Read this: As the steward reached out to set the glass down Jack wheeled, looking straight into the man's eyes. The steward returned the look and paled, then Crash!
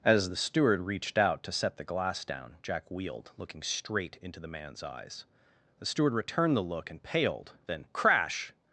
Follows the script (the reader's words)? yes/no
yes